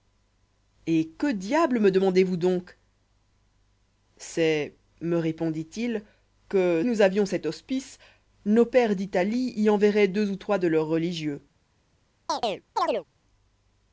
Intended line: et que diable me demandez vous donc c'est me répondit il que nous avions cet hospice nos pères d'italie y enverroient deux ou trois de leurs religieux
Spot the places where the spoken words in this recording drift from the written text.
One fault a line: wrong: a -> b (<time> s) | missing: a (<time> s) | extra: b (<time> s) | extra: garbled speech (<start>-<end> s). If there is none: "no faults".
no faults